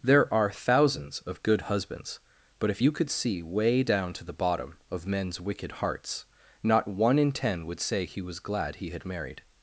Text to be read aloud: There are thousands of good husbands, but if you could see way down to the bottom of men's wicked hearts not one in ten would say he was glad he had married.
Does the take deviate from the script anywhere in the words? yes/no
no